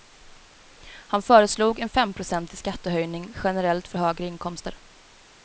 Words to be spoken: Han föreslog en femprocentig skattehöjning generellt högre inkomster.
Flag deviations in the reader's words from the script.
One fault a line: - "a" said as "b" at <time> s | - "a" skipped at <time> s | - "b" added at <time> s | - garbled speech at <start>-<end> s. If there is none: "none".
- "för" added at 3.9 s